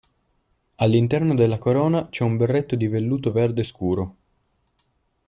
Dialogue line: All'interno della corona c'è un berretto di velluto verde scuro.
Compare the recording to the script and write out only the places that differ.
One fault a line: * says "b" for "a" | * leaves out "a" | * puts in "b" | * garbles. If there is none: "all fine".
all fine